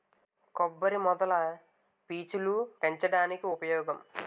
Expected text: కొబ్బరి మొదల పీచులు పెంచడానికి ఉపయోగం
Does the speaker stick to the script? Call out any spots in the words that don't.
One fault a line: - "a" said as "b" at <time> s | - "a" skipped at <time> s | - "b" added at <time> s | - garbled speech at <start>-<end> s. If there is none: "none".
none